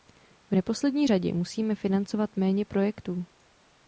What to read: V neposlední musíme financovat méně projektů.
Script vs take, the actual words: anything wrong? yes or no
yes